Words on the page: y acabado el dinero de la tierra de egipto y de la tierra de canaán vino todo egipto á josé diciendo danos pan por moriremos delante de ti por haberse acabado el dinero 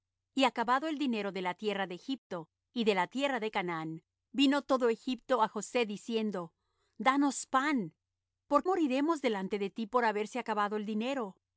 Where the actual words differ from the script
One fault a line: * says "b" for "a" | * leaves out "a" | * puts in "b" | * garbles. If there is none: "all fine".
all fine